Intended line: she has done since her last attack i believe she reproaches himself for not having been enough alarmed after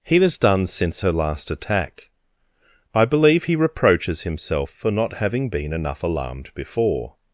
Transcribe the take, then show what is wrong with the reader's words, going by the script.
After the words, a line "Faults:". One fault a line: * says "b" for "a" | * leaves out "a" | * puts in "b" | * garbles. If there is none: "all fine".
he has done since her last attack i believe he reproaches himself for not having been enough alarmed before
Faults:
* says "he" for "she"
* says "he" for "she"
* says "before" for "after"